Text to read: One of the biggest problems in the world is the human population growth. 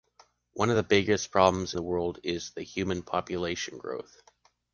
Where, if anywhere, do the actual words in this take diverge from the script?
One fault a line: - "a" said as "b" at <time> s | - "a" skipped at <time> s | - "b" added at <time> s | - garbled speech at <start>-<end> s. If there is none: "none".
- "in" skipped at 1.7 s